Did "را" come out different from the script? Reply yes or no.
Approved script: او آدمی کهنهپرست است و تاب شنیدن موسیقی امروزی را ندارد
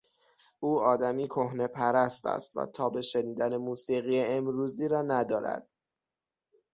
no